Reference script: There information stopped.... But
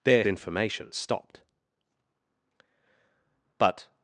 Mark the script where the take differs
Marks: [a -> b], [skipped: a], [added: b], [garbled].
There information stopped.... But